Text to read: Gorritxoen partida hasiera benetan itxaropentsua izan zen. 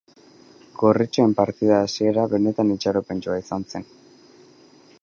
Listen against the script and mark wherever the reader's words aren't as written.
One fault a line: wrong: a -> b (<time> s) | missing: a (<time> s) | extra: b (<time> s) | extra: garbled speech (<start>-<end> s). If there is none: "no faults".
no faults